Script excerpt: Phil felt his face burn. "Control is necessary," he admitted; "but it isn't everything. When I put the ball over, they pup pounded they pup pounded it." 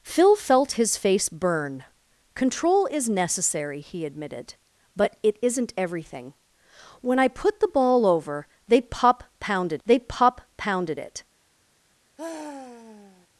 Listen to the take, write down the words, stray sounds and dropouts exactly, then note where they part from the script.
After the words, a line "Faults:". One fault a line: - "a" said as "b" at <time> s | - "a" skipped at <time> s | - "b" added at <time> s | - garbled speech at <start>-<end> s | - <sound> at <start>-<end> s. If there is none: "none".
Phil felt his face burn. "Control is necessary," he admitted; "but it isn't everything. When I put the ball over, they pup pounded they pup pounded it."
Faults:
- sigh at 12.2-13.3 s